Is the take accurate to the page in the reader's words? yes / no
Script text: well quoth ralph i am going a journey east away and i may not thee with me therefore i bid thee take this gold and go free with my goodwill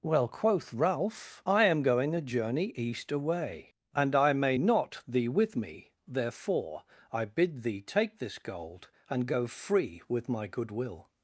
yes